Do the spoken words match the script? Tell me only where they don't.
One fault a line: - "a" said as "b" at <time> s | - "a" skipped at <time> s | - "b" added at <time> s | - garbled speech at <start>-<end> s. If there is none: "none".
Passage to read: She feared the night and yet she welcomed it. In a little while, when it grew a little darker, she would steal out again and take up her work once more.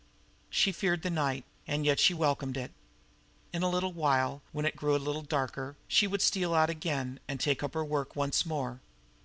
none